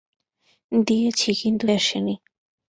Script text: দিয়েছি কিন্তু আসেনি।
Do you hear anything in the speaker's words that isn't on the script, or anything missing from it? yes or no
no